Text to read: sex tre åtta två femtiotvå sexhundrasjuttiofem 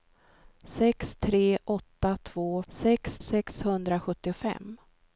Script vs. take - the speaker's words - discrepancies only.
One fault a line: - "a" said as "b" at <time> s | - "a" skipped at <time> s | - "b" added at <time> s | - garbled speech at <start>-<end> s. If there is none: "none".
- "femtiotvå" said as "sex" at 2.7 s